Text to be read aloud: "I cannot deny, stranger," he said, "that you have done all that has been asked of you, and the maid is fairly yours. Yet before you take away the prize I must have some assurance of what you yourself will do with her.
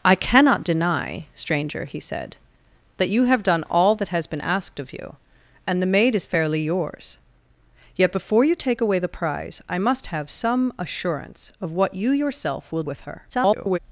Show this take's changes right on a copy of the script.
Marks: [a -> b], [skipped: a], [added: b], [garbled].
"I cannot deny, stranger," he said, "that you have done all that has been asked of you, and the maid is fairly yours. Yet before you take away the prize I must have some assurance of what you yourself will [skipped: do] with her. [garbled]